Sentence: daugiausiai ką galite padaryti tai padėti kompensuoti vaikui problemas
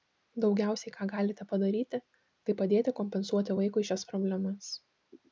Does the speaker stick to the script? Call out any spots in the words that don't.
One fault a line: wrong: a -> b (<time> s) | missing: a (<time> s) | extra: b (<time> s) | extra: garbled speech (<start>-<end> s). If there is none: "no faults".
extra: šias (3.9 s)